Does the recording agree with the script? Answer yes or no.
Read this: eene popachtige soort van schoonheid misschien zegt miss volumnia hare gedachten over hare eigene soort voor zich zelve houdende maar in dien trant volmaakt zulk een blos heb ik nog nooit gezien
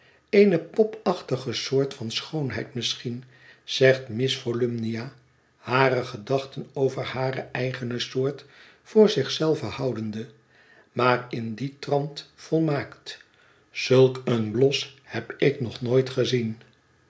yes